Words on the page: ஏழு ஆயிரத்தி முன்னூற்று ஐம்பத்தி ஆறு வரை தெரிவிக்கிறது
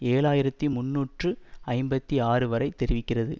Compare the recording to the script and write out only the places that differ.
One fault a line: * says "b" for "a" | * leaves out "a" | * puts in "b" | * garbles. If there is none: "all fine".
all fine